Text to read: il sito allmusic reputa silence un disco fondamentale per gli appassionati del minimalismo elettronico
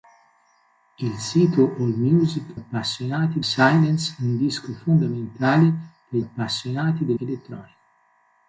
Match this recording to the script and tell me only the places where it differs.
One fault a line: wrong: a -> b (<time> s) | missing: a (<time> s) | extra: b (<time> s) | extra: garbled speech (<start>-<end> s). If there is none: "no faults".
wrong: reputa -> appassionati (2.5 s)
missing: gli (6.2 s)
missing: minimalismo (7.2 s)